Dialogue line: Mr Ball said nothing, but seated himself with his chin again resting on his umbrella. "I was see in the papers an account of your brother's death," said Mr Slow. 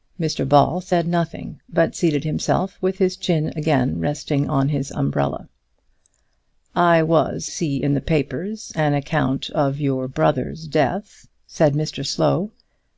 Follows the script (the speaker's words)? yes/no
yes